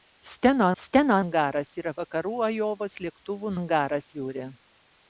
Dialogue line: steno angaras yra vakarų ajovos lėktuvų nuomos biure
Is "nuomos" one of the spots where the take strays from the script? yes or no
yes